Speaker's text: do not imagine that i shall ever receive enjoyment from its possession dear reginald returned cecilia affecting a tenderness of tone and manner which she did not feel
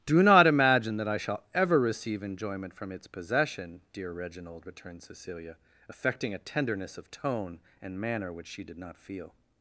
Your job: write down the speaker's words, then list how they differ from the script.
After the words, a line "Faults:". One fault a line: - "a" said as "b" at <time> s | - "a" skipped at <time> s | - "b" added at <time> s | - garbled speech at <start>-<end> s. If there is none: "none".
do not imagine that i shall ever receive enjoyment from its possession dear reginald returned cecilia affecting a tenderness of tone and manner which she did not feel
Faults:
none